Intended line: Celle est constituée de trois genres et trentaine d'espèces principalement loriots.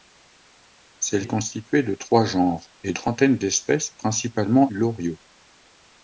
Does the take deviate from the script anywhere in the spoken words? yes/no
no